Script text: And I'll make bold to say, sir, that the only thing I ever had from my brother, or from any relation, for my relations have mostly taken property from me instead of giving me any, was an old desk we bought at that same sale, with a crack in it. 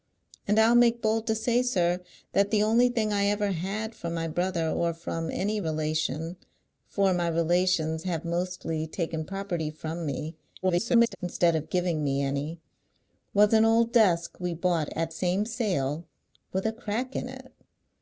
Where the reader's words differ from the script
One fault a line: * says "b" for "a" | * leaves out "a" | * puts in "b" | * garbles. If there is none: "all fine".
* garbles
* leaves out "that"